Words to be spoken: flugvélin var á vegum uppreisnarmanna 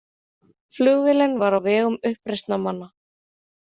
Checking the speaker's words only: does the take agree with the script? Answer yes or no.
yes